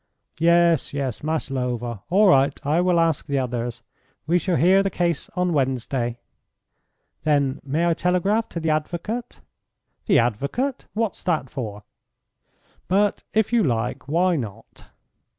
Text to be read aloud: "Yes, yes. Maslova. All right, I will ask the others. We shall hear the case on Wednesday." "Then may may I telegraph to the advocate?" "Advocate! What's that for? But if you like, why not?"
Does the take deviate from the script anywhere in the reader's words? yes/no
yes